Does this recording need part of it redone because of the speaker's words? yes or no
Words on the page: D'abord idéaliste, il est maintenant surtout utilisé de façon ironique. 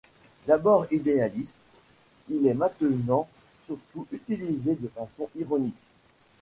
no